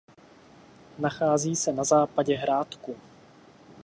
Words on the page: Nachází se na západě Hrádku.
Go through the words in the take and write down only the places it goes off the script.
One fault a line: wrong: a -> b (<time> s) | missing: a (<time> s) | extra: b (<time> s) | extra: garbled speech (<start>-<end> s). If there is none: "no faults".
no faults